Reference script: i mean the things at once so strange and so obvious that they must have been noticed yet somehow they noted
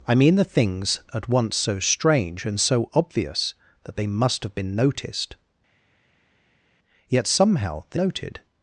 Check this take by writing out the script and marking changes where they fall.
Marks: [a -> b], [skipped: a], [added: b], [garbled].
i mean the things at once so strange and so obvious that they must have been noticed yet somehow they noted